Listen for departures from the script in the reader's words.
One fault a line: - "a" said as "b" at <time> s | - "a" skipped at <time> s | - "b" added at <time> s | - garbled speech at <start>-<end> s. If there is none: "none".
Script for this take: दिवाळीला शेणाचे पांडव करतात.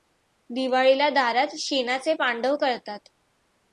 - "दारात" added at 1.1 s